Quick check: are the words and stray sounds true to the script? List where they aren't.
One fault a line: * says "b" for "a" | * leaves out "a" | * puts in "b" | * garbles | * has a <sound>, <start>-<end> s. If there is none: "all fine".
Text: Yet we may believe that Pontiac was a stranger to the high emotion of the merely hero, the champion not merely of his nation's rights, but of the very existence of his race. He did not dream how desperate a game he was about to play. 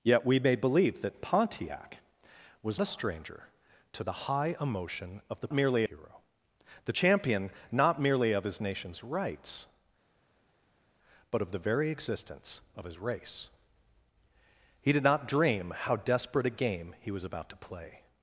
all fine